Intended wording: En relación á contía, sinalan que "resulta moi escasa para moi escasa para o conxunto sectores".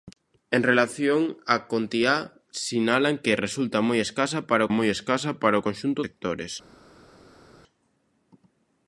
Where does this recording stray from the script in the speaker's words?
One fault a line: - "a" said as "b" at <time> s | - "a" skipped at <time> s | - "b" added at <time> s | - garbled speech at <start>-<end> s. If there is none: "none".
none